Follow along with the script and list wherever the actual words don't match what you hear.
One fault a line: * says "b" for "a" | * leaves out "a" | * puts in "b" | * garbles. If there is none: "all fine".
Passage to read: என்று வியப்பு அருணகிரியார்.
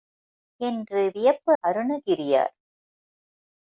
all fine